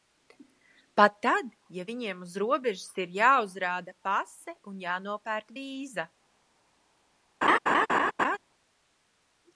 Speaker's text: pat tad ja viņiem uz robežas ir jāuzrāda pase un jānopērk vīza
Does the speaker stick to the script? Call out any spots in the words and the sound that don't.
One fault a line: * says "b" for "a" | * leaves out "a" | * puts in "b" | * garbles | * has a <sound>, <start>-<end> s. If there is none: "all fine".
* has a laugh, 7.4-8.4 s